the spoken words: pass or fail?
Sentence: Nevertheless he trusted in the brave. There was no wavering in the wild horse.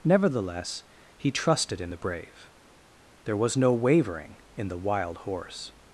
pass